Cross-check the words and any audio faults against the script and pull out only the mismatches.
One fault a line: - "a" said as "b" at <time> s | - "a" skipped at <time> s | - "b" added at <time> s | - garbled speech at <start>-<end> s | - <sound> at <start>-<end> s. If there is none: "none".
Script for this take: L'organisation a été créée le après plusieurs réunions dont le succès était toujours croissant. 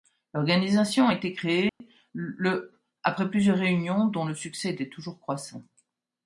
- dropout at 1.7-1.8 s